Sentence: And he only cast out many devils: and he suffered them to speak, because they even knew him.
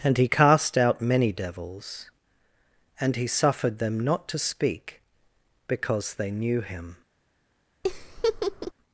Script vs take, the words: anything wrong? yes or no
yes